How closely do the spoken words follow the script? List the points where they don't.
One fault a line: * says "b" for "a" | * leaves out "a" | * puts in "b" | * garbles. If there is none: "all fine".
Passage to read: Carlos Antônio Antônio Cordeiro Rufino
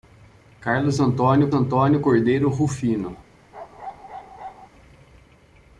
all fine